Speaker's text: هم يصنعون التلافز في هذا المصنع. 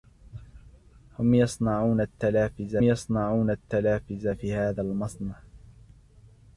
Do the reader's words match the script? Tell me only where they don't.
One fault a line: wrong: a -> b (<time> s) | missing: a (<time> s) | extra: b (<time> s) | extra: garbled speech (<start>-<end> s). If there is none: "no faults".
extra: يصنعون التلافز (2.8 s)